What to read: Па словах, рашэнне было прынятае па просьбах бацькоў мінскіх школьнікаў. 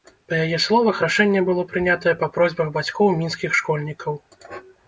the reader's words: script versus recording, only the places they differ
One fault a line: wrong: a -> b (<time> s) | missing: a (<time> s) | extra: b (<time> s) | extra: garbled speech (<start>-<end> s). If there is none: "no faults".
extra: яе (0.5 s)